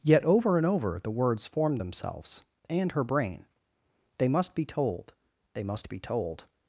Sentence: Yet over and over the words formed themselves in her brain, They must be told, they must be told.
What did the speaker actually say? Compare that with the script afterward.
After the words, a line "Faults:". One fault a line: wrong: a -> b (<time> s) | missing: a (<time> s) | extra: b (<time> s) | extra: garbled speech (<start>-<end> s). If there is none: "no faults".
Yet over and over the words formed themselves and her brain, They must be told, they must be told.
Faults:
wrong: in -> and (2.7 s)